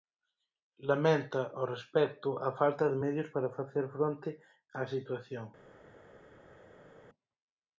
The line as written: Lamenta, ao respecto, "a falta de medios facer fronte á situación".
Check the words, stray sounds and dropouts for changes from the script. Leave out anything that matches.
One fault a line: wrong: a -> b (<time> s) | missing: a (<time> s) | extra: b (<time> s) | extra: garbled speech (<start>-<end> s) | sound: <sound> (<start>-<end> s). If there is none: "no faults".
extra: para (3.3 s)